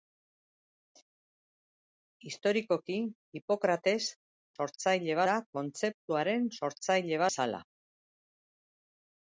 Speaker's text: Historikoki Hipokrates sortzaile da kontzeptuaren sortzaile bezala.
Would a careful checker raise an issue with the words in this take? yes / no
no